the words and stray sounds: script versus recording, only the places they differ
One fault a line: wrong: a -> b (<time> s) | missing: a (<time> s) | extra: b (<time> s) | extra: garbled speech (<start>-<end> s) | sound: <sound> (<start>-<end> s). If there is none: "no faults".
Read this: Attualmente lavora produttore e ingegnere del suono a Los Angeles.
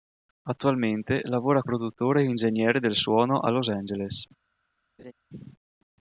sound: laugh (5.0-5.1 s)